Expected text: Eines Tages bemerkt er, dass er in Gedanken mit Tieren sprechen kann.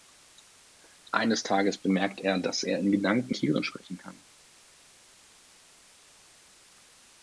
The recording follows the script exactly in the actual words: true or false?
false